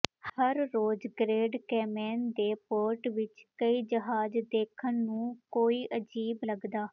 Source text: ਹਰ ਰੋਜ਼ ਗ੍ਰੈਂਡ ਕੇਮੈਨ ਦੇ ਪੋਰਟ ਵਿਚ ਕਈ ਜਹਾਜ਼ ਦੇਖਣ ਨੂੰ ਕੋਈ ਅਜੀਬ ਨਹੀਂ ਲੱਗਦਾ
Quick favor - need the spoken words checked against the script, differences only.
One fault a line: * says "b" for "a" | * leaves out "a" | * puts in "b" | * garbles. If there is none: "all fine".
* leaves out "ਨਹੀਂ"